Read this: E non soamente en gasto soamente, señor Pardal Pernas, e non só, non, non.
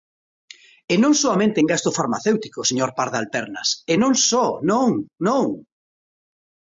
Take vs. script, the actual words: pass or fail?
fail